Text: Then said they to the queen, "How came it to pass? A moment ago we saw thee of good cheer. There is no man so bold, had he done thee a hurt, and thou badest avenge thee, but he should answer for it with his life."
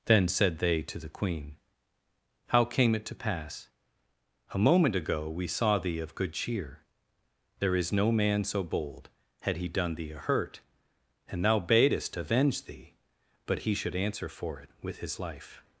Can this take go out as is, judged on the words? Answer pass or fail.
pass